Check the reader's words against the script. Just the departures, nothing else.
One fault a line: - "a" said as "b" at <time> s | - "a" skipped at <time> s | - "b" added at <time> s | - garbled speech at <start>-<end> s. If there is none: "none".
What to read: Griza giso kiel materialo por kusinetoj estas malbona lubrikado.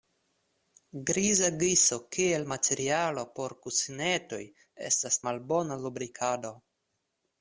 none